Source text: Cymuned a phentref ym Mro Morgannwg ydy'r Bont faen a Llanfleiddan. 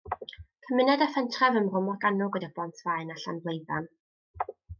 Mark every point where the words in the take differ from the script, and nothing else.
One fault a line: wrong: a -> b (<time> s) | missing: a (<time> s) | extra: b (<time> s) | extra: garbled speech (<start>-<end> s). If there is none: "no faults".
no faults